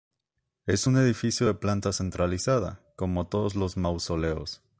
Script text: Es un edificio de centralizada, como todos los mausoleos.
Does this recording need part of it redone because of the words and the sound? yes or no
yes